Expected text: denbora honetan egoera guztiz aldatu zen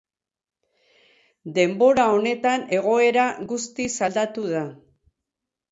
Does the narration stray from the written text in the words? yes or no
yes